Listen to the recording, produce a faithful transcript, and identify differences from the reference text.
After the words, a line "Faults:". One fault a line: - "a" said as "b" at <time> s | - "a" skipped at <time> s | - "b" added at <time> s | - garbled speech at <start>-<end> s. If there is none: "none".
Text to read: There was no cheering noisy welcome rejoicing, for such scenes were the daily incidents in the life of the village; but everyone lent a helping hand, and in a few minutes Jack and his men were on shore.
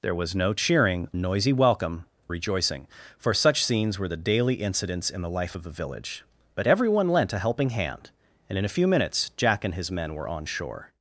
There was no cheering noisy welcome rejoicing, for such scenes were the daily incidents in the life of the village; but everyone lent a helping hand, and in a few minutes Jack and his men were on shore.
Faults:
none